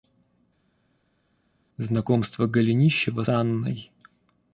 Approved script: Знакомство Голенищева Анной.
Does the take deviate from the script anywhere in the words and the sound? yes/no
no